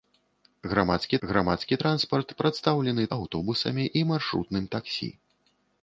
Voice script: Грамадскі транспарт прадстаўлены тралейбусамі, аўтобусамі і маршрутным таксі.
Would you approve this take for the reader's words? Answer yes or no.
no